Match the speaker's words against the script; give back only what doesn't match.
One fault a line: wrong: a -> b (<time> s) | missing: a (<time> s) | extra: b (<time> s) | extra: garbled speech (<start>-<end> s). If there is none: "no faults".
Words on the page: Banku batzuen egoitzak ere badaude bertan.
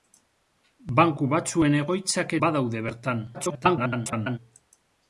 missing: ere (2.4 s)
extra: garbled speech (3.3-4.4 s)